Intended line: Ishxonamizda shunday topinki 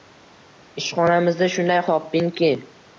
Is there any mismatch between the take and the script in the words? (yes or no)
no